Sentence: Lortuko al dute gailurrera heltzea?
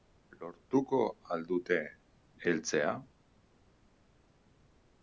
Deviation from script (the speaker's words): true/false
true